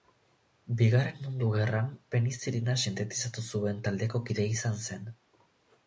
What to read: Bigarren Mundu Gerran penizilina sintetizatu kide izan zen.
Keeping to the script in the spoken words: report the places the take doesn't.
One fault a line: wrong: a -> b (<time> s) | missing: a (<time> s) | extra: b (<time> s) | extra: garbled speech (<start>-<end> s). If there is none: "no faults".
extra: zuen taldeko (3.5 s)